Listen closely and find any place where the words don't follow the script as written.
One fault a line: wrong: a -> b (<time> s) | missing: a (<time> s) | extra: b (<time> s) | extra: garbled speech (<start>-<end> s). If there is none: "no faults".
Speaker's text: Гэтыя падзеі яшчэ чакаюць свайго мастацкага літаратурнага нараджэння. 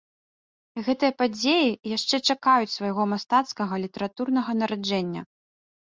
no faults